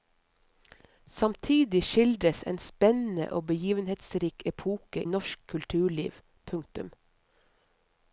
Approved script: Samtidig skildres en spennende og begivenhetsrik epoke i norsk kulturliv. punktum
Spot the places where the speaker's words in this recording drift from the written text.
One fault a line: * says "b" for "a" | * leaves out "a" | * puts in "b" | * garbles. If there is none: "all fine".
* leaves out "i"